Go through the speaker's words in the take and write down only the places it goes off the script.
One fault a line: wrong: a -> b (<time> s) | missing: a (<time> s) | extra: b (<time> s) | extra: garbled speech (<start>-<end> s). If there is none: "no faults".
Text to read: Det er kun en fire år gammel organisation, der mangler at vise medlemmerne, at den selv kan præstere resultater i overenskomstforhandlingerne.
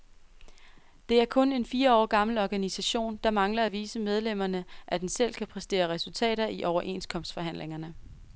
no faults